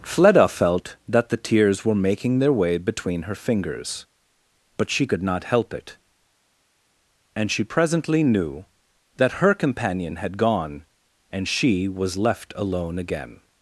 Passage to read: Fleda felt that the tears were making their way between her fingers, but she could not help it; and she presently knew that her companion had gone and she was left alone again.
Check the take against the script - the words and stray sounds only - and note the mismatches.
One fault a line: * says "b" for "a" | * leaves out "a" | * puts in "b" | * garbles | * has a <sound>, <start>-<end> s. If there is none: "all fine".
all fine